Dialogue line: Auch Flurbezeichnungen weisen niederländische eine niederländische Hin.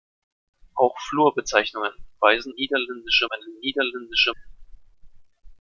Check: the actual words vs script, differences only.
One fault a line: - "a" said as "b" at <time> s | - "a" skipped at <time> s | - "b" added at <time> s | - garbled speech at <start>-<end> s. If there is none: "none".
none